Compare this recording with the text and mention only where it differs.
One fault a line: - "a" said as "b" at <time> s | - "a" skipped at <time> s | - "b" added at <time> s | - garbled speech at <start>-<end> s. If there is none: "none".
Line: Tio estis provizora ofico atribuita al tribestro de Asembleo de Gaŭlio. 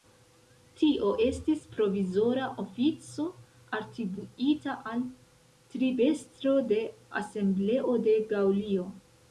none